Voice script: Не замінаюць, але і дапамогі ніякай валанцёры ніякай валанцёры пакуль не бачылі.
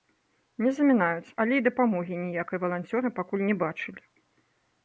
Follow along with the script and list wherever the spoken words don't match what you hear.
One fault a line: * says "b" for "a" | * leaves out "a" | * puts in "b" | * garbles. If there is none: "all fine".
* leaves out "ніякай валанцёры"